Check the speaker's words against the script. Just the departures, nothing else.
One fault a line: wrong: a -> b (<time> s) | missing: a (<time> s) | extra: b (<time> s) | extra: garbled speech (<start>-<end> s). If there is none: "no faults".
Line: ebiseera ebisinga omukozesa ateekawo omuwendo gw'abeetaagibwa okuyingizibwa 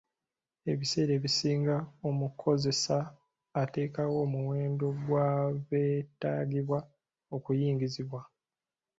no faults